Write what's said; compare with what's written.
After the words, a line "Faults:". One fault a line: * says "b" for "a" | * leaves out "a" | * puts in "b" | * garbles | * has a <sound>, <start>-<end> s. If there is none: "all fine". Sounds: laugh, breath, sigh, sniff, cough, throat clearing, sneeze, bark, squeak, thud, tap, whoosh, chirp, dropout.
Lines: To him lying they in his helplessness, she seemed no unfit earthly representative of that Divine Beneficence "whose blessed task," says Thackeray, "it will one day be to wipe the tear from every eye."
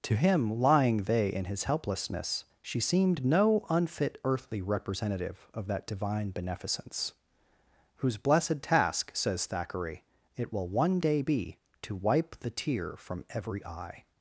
To him lying they in his helplessness, she seemed no unfit earthly representative of that Divine Beneficence "whose blessed task," says Thackeray, "it will one day be to wipe the tear from every eye."
Faults:
all fine